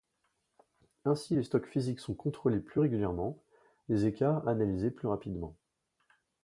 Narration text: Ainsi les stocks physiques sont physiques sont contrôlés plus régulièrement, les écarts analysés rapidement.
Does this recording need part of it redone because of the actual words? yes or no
yes